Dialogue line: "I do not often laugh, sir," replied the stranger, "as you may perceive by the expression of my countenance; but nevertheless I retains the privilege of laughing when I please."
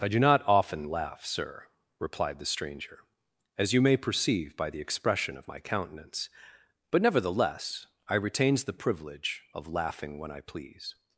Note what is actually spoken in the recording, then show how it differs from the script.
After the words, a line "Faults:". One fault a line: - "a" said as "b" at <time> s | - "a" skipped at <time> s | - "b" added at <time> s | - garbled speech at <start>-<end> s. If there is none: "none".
"I do not often laugh, sir," replied the stranger, "as you may perceive by the expression of my countenance; but nevertheless I retains the privilege of laughing when I please."
Faults:
none